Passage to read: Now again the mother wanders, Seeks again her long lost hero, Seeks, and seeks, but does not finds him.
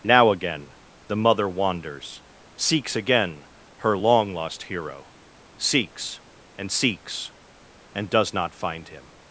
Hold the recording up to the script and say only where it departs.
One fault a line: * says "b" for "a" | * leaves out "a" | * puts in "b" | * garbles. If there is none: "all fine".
* says "and" for "but"
* says "find" for "finds"